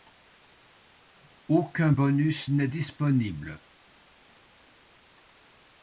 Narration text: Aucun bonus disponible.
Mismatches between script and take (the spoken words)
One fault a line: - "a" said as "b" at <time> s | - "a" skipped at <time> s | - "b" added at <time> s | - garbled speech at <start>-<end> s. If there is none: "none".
- "n'est" added at 2.5 s